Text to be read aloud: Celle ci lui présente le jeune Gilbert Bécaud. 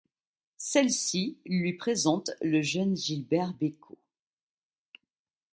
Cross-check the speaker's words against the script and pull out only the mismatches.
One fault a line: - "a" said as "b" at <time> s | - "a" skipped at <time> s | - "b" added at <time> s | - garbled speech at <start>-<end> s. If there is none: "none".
none